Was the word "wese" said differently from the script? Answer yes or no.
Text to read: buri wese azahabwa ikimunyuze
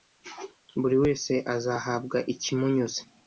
no